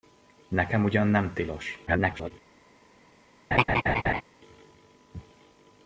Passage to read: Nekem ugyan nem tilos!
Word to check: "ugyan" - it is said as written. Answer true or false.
true